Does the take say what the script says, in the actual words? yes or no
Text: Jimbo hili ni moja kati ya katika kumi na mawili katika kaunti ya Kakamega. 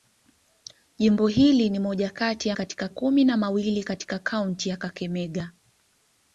yes